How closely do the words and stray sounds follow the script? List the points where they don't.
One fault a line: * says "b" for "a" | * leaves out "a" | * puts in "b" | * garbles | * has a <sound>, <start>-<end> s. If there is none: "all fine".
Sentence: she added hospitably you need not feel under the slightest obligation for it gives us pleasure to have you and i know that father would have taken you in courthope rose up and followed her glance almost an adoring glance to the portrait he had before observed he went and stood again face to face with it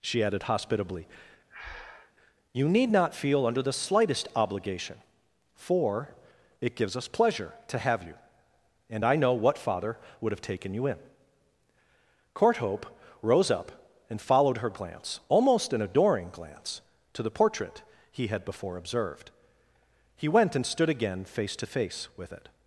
* has a breath, 1.5-2.1 s
* says "what" for "that"